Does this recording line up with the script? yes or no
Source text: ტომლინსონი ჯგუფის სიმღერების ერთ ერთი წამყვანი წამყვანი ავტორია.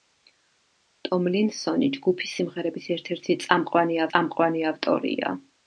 yes